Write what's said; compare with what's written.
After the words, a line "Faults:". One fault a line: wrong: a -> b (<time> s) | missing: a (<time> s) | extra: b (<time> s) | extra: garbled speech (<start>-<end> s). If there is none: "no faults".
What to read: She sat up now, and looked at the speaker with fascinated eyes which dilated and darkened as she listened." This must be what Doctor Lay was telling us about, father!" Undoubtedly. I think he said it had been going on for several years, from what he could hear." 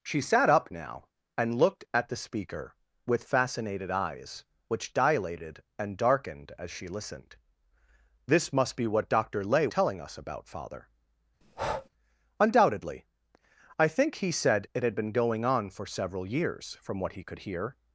She sat up now, and looked at the speaker with fascinated eyes which dilated and darkened as she listened." This must be what Doctor Lay telling us about, father!" Undoubtedly. I think he said it had been going on for several years, from what he could hear."
Faults:
missing: was (9.7 s)